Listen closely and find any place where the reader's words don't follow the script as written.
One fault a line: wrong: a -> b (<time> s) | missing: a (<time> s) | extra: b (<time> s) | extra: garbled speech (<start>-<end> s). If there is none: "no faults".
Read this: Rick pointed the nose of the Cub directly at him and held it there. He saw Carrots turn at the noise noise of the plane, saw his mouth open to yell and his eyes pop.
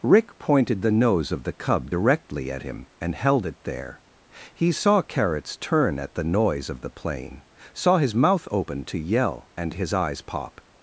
missing: noise (6.7 s)